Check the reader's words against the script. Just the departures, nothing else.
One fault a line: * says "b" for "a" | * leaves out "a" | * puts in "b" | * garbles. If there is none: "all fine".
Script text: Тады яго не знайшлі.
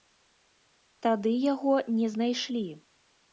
all fine